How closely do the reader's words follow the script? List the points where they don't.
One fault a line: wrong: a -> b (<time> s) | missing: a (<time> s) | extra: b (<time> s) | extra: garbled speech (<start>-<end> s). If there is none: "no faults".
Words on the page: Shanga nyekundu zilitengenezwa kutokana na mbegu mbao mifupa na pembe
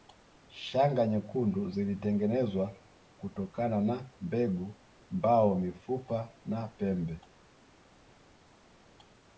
no faults